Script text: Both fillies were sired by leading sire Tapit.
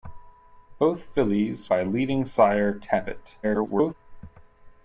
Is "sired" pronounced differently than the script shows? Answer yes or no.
yes